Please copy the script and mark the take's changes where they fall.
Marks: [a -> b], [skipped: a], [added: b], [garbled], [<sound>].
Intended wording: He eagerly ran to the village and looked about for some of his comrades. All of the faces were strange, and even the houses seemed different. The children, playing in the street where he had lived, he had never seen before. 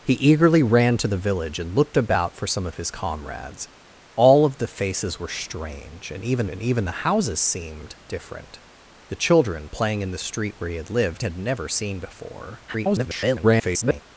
He eagerly ran to the village and looked about for some of his comrades. All of the faces were strange, and even [added: and even] the houses seemed different. The children, playing in the street where he had lived, [skipped: he] had never seen before. [garbled]